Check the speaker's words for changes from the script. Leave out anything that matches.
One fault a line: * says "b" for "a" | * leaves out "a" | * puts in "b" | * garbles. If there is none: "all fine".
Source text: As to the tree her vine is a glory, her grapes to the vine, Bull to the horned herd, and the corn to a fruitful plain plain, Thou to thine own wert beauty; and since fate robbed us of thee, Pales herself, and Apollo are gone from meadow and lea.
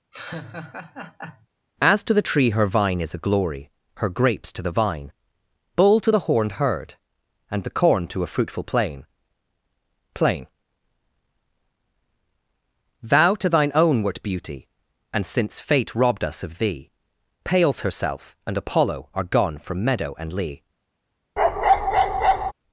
all fine